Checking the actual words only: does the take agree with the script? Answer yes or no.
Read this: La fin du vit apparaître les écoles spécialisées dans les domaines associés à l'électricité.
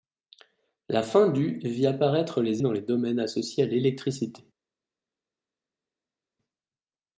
no